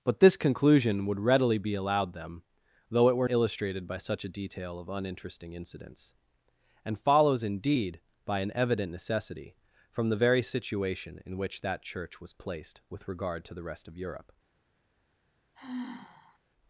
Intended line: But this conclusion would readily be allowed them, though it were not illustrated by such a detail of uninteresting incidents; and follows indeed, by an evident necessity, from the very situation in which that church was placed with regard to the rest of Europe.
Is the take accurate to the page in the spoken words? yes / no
no